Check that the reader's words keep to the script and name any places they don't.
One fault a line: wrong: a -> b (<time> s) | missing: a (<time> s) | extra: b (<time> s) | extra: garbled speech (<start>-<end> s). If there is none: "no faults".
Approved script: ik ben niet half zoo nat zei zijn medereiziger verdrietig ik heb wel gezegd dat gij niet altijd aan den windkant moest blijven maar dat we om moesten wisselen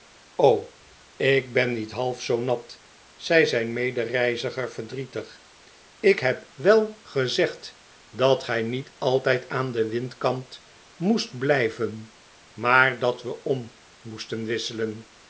no faults